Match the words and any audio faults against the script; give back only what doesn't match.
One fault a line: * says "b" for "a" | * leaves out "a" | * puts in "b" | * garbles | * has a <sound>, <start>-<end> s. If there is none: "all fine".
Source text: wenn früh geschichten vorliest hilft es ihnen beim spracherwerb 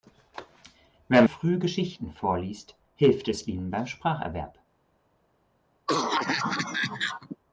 * has a cough, 5.9-7.4 s